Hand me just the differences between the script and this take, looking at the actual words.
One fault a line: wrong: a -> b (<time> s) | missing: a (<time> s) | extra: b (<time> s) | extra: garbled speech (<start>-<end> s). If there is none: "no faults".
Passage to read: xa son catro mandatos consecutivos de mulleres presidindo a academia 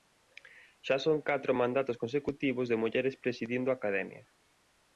no faults